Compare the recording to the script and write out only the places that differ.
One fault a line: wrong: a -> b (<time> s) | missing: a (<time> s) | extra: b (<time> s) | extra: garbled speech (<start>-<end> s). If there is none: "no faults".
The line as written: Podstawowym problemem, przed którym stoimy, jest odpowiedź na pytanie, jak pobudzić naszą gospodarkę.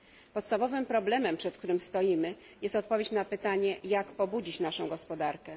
no faults